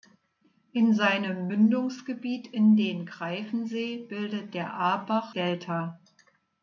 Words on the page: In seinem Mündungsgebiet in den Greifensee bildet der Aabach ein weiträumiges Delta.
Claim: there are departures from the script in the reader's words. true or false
true